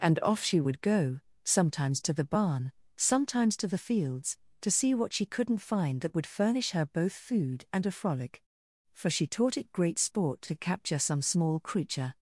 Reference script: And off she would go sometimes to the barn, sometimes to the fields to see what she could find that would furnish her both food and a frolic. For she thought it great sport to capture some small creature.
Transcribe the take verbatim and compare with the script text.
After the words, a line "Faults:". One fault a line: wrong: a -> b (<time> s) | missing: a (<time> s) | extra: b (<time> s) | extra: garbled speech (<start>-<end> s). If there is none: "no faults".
And off she would go sometimes to the barn, sometimes to the fields to see what she couldn't find that would furnish her both food and a frolic. For she taught it great sport to capture some small creature.
Faults:
wrong: could -> couldn't (5.3 s)
wrong: thought -> taught (9.3 s)